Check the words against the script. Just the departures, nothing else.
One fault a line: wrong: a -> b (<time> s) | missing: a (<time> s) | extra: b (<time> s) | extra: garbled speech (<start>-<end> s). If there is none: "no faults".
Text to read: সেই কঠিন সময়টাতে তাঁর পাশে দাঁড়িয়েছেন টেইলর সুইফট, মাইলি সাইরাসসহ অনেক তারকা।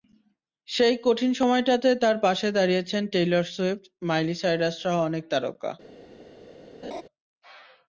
no faults